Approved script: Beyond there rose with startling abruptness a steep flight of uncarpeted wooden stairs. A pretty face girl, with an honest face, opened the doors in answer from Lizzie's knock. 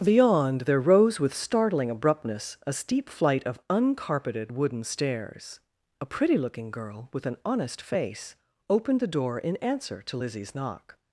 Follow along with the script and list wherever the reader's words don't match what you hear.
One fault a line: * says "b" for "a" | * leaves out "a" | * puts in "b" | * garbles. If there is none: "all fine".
* says "looking" for "face"
* says "door" for "doors"
* says "to" for "from"